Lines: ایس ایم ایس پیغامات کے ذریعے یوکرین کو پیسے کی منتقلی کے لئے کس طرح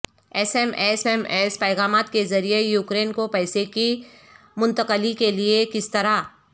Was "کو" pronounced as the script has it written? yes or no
yes